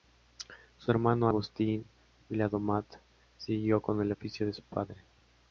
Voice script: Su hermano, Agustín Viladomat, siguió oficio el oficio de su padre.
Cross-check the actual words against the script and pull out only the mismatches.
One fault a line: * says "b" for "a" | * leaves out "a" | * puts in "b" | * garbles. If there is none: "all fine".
* says "con" for "oficio"